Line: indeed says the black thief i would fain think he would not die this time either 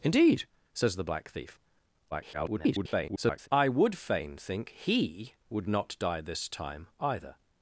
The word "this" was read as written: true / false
true